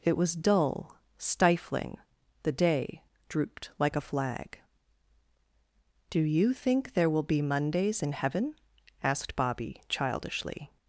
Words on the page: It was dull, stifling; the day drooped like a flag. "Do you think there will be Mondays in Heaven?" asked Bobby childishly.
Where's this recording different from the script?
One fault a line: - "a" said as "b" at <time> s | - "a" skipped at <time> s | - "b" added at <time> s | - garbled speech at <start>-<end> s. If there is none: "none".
none